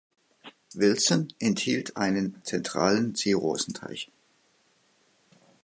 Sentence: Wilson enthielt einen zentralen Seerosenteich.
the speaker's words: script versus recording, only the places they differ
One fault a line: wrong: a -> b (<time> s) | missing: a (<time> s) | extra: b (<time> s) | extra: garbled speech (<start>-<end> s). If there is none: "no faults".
no faults